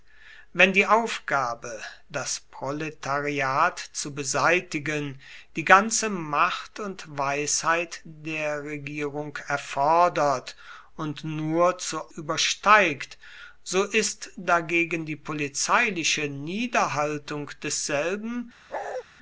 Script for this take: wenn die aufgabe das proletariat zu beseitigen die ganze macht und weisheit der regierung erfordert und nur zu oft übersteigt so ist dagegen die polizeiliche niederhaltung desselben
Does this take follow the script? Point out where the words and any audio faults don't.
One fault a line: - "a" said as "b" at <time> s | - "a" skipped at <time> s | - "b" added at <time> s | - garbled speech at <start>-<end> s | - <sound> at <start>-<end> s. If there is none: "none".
- "oft" skipped at 12.1 s
- bark at 18.7-19.0 s